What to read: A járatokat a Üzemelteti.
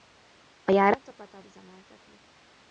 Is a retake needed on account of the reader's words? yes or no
no